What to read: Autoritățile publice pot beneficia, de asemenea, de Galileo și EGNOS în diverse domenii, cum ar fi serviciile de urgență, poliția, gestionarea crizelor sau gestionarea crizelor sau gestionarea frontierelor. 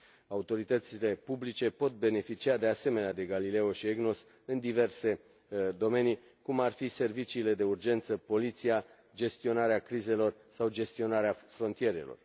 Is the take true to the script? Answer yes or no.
no